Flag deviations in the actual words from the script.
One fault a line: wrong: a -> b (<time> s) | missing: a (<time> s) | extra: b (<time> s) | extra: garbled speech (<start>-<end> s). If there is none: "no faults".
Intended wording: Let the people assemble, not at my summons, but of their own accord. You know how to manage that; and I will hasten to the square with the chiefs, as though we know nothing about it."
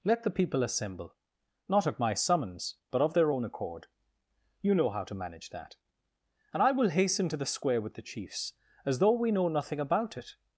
no faults